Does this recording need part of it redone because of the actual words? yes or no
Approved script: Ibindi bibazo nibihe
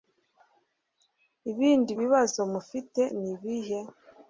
yes